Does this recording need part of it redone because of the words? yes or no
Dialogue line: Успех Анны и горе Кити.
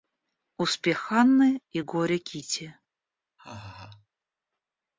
no